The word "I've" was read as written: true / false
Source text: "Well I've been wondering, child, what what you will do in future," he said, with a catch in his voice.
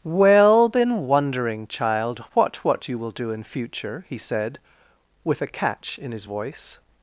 false